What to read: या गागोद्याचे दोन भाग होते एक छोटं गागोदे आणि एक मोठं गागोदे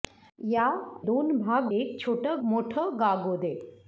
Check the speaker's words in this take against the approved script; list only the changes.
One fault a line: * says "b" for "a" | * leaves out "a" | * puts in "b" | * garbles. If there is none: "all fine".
* leaves out "गागोद्याचे"
* leaves out "होते"
* leaves out "गागोदे आणि एक"